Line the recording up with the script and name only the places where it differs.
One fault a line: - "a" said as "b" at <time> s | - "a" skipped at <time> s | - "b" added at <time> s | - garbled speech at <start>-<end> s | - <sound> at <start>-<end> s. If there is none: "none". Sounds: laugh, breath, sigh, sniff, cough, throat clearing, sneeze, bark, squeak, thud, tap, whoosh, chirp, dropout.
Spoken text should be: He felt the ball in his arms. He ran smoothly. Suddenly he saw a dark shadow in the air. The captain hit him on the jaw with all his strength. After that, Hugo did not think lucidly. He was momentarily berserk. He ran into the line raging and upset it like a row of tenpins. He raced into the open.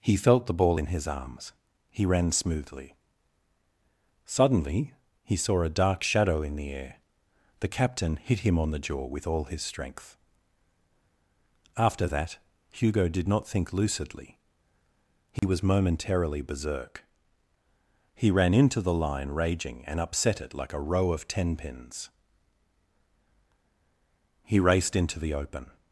- dropout at 15.4-15.4 s